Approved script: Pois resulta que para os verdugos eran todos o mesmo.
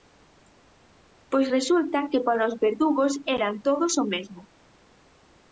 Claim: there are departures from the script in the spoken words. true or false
false